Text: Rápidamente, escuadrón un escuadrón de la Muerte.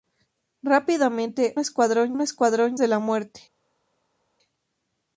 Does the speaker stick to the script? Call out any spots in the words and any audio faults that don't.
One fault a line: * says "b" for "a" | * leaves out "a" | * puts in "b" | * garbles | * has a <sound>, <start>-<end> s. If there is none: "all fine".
all fine